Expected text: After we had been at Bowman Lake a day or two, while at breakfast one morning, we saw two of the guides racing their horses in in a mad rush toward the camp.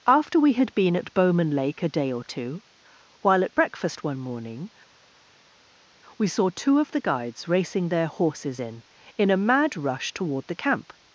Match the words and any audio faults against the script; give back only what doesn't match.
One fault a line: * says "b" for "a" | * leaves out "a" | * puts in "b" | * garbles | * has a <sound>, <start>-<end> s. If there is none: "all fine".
all fine